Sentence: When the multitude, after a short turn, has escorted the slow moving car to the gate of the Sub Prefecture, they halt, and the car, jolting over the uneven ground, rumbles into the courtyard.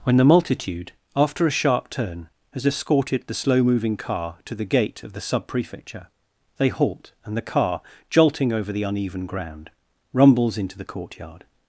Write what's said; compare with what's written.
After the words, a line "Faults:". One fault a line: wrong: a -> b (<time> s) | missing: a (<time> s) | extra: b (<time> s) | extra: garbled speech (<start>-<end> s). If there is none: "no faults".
When the multitude, after a sharp turn, has escorted the slow moving car to the gate of the Sub Prefecture, they halt, and the car, jolting over the uneven ground, rumbles into the courtyard.
Faults:
wrong: short -> sharp (1.5 s)